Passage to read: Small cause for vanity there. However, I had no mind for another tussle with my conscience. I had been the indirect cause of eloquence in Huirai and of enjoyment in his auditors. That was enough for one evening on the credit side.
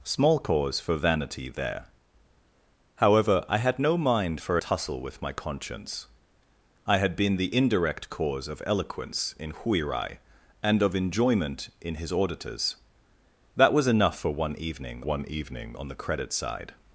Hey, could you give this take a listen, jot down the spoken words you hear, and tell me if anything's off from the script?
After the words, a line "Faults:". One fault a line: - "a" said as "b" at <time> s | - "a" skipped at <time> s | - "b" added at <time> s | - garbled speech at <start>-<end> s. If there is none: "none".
Small cause for vanity there. However, I had no mind for tussle with my conscience. I had been the indirect cause of eloquence in Huirai and of enjoyment in his auditors. That was enough for one evening one evening on the credit side.
Faults:
- "another" skipped at 4.6 s
- "one evening" added at 15.0 s